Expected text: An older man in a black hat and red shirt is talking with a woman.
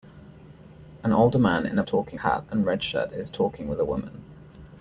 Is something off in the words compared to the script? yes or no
yes